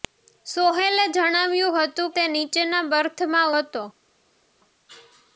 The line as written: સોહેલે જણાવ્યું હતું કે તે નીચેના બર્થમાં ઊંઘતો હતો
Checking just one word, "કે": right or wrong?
wrong